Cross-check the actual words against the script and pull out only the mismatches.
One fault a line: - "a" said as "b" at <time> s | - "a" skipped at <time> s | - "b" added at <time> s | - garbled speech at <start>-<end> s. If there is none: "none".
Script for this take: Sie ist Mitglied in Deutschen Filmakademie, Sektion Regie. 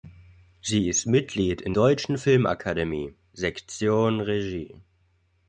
none